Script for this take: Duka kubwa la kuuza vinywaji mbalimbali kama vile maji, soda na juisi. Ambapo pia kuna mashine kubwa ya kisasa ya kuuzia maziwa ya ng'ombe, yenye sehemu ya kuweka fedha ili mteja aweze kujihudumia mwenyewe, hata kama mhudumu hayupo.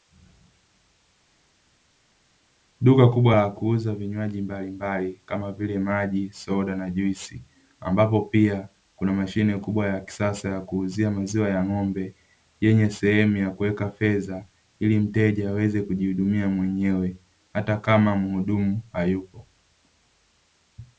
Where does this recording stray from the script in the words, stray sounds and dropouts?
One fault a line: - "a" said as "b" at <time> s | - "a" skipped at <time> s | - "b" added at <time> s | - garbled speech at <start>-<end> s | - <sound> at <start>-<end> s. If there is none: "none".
none